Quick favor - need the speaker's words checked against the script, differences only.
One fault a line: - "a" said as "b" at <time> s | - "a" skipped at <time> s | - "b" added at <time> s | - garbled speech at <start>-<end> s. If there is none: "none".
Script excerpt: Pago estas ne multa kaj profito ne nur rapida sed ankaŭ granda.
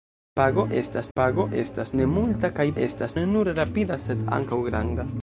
- "pago estas" added at 1.2 s
- "profito" said as "estas" at 2.8 s